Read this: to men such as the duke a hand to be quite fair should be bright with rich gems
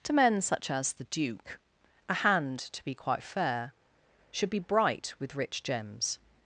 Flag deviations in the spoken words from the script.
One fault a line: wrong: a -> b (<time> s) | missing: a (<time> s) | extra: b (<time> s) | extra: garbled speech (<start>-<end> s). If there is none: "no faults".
no faults